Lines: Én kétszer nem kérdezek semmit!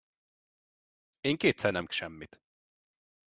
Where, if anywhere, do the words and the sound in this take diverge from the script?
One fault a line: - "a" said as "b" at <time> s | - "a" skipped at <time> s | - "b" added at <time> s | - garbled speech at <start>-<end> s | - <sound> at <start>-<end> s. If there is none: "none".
- "kérdezek" skipped at 1.9 s